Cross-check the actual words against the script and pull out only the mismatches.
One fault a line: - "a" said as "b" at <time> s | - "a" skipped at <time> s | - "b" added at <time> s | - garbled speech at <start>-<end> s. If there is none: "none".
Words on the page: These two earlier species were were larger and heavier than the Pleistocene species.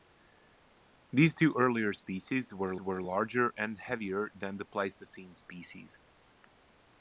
none